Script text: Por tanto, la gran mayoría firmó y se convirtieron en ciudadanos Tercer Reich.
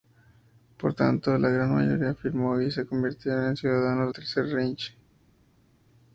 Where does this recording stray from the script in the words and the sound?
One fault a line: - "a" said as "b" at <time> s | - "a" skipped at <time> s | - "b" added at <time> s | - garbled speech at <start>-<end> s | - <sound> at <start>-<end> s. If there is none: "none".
none